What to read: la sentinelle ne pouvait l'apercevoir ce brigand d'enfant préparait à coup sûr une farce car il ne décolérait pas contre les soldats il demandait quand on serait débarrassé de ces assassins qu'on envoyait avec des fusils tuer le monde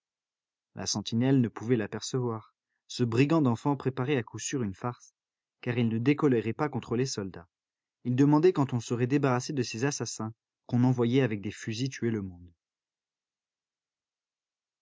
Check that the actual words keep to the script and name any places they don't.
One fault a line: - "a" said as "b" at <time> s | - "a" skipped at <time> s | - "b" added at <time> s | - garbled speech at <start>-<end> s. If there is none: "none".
none